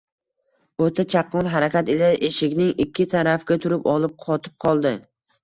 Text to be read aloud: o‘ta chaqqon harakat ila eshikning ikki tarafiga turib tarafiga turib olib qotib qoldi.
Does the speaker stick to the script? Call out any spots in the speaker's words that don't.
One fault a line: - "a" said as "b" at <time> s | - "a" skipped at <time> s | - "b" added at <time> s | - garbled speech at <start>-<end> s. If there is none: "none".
- "tarafiga turib" skipped at 3.9 s